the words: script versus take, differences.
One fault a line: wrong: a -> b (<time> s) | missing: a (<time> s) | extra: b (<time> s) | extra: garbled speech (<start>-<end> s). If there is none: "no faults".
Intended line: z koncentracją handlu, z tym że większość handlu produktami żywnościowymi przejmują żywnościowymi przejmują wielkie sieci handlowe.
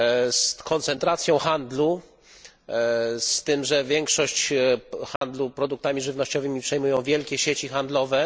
missing: żywnościowymi przejmują (7.0 s)